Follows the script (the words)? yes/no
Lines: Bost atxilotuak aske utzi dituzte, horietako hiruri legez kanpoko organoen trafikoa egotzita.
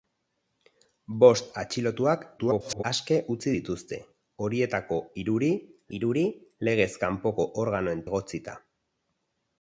no